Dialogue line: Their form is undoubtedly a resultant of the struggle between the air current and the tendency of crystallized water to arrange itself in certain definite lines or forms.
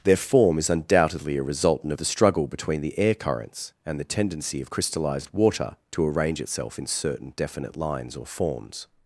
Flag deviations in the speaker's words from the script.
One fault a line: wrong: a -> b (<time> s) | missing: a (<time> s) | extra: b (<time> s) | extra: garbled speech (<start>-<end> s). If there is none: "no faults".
wrong: current -> currents (3.1 s)